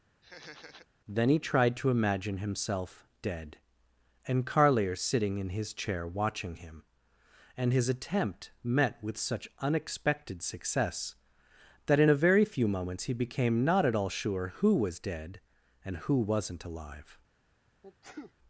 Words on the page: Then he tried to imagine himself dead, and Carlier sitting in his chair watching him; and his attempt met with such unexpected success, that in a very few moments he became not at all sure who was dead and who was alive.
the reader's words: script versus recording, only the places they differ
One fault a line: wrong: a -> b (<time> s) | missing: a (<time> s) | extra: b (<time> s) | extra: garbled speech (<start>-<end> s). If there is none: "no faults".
wrong: was -> wasn't (16.2 s)